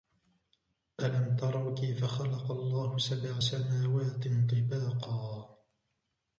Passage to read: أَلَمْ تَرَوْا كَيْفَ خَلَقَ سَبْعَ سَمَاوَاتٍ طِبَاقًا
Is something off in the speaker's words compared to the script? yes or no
yes